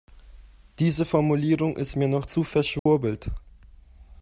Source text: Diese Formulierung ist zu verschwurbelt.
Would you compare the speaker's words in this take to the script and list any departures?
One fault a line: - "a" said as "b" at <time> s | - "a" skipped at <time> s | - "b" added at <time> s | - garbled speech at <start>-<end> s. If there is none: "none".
- "mir noch" added at 1.9 s